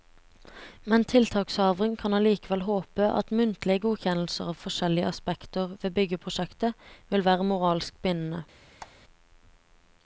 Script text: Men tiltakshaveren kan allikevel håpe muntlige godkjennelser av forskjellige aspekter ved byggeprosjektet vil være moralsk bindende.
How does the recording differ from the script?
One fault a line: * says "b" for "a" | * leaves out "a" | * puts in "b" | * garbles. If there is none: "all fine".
* puts in "at"